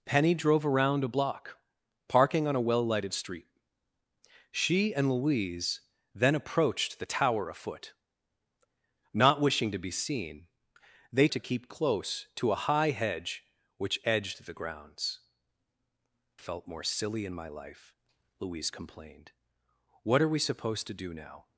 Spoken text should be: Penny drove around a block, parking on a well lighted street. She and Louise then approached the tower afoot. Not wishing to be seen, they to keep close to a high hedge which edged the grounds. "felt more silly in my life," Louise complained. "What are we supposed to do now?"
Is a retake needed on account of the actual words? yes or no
no